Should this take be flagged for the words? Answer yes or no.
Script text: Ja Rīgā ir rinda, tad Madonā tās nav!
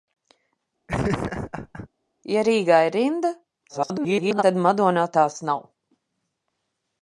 yes